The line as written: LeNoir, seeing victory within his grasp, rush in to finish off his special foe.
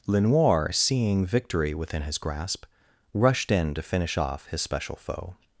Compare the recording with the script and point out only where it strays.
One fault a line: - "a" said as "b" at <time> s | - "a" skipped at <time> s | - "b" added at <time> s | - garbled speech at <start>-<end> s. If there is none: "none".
- "rush" said as "rushed" at 3.1 s